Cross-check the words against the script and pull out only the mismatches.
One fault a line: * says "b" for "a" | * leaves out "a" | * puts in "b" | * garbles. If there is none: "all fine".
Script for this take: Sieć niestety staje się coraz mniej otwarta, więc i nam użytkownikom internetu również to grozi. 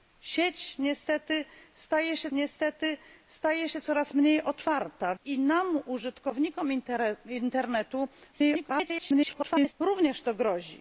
* puts in "niestety staje się"
* leaves out "więc"
* garbles